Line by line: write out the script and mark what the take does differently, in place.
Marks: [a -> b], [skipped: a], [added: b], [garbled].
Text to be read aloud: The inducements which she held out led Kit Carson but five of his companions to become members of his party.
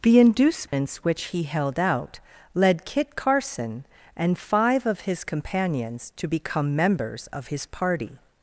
The inducements which [she -> he] held out led Kit Carson [but -> and] five of his companions to become members of his party.